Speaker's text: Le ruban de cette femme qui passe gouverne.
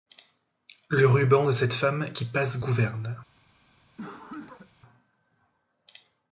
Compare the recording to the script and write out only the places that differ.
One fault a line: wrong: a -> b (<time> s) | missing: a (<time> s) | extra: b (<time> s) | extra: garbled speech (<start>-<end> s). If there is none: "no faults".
no faults